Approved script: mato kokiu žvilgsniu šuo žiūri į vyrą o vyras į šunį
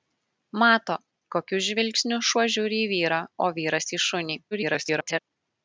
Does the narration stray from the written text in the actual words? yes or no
yes